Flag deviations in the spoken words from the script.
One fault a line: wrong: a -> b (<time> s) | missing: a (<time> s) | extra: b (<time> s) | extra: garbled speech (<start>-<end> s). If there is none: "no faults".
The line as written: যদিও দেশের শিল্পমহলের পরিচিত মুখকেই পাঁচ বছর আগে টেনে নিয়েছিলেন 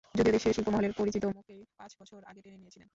no faults